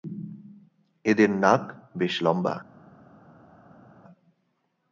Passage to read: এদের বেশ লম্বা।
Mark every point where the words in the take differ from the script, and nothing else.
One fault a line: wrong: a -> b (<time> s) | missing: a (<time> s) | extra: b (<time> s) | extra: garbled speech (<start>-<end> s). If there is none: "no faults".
extra: নাক (1.4 s)